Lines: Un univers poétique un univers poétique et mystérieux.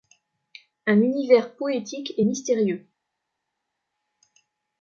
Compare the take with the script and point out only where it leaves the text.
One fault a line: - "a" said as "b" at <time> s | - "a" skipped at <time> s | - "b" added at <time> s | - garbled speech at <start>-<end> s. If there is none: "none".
- "un univers poétique" skipped at 2.1 s